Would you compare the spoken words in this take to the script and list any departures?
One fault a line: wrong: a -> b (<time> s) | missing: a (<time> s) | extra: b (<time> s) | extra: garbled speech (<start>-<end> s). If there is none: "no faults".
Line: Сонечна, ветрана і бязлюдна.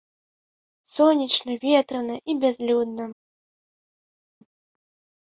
no faults